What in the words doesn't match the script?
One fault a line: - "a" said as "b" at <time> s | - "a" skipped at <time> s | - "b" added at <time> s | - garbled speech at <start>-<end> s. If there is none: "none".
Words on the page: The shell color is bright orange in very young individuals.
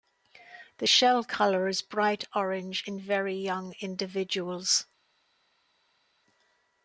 none